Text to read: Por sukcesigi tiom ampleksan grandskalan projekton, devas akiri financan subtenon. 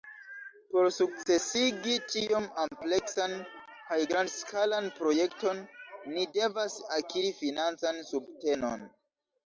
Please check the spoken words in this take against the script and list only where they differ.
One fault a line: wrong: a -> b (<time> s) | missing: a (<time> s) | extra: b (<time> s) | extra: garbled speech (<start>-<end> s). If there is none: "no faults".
extra: kaj (3.9 s)
extra: ni (6.2 s)